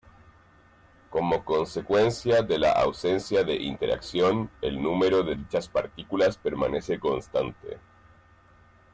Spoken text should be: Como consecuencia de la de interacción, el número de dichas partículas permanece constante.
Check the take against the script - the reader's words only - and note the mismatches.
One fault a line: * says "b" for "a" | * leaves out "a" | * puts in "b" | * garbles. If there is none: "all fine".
* puts in "ausencia"